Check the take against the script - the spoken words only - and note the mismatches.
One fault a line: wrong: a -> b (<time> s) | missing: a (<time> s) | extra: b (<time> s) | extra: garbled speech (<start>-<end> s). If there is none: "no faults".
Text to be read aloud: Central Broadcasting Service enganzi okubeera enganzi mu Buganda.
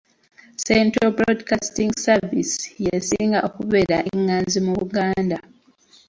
wrong: enganzi -> y'esinga (2.9 s)